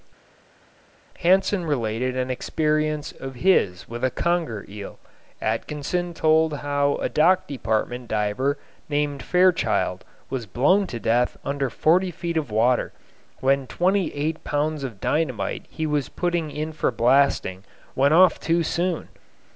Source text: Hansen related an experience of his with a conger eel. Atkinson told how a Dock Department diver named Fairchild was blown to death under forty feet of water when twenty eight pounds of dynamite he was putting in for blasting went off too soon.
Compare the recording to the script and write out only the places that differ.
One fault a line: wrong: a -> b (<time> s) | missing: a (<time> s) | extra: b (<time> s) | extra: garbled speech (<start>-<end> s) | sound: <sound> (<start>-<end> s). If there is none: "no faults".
no faults